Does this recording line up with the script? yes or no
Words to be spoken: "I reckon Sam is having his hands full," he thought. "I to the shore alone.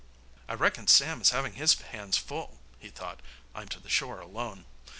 yes